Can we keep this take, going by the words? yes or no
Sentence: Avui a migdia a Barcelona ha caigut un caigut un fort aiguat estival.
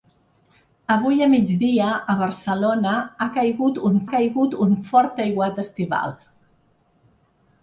yes